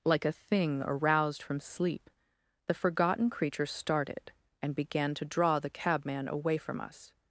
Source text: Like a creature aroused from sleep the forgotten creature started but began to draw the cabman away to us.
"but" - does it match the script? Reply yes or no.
no